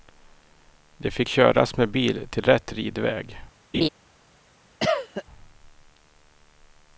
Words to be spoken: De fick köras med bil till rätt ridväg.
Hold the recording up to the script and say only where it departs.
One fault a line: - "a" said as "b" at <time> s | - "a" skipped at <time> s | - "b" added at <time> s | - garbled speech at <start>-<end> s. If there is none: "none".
none